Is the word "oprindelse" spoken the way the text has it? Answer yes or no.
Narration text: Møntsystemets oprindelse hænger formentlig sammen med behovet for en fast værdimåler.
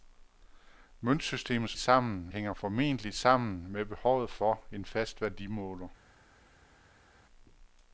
no